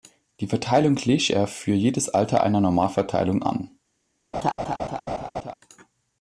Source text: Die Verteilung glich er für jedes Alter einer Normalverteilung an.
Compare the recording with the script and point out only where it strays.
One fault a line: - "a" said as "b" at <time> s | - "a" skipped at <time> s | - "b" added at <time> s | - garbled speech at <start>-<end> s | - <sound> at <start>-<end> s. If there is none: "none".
- laugh at 4.3-5.5 s